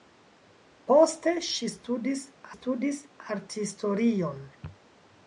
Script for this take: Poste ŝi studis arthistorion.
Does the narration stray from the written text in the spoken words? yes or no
yes